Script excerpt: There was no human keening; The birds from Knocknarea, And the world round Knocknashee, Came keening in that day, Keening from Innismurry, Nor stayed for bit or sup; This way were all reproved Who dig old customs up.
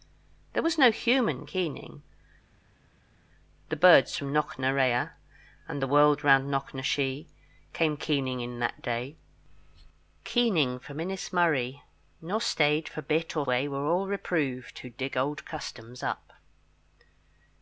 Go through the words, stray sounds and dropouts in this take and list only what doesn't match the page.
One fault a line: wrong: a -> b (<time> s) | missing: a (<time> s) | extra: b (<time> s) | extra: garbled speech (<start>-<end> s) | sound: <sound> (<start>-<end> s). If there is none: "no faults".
missing: sup This (13.5 s)